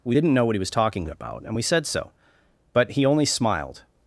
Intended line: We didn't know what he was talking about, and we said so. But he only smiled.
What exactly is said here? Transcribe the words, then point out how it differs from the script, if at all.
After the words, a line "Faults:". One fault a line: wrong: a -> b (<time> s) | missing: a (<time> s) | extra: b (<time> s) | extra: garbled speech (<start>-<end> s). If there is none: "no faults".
We didn't know what he was talking about, and we said so. But he only smiled.
Faults:
no faults